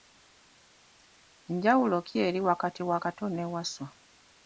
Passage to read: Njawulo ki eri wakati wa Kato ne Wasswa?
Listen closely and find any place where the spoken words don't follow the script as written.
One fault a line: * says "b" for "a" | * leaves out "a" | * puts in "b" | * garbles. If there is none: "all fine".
all fine